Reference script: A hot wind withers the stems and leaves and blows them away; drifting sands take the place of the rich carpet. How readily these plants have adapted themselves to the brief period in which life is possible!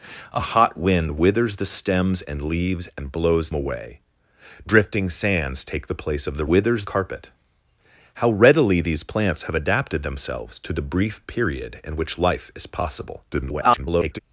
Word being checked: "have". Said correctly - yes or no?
yes